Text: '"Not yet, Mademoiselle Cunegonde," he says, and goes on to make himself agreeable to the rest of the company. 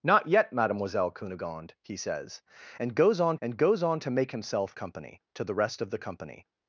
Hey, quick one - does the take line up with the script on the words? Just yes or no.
no